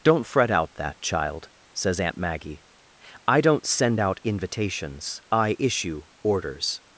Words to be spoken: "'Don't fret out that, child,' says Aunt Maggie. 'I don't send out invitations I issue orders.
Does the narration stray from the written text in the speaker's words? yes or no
no